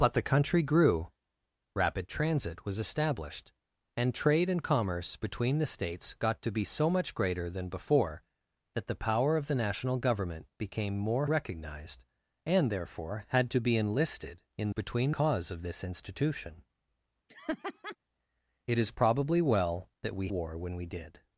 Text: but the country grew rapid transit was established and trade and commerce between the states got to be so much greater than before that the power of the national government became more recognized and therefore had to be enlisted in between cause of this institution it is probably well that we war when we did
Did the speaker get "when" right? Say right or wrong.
right